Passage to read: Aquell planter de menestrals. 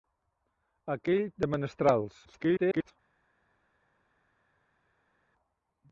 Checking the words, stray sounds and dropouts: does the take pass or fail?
fail